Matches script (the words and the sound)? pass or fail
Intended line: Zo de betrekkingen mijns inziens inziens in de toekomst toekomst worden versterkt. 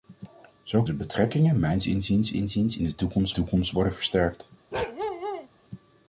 fail